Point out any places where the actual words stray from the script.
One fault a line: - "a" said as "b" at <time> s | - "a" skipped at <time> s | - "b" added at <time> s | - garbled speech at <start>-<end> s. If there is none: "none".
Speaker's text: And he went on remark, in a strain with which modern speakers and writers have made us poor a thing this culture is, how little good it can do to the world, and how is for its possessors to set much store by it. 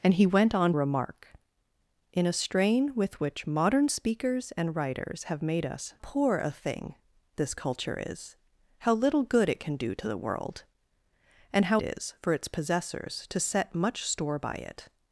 none